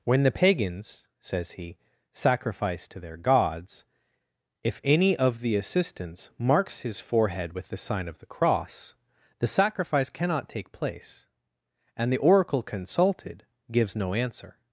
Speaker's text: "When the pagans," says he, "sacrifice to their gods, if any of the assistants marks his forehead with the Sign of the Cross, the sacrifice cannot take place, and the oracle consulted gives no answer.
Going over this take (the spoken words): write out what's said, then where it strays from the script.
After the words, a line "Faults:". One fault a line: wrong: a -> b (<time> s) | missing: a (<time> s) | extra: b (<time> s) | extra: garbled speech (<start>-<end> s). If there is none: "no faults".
"When the pagans," says he, "sacrifice to their gods, if any of the assistants marks his forehead with the Sign of the Cross, the sacrifice cannot take place, and the oracle consulted gives no answer.
Faults:
no faults